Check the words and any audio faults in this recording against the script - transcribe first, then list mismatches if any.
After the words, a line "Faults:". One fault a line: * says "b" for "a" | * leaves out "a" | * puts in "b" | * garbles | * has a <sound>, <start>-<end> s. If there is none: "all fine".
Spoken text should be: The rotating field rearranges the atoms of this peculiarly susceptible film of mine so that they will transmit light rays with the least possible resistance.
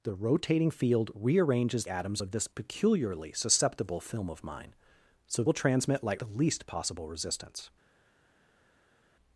The rotating field rearranges atoms of this peculiarly susceptible film of mine so will transmit light the least possible resistance.
Faults:
* leaves out "the"
* leaves out "that they"
* leaves out "rays with"